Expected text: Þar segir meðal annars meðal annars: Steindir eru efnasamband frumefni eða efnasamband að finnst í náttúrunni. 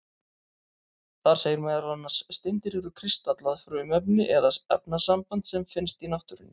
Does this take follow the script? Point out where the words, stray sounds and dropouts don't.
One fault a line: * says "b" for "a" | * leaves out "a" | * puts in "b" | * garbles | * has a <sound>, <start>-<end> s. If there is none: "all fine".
* leaves out "meðal annars"
* says "kristallað" for "efnasamband"
* says "sem" for "að"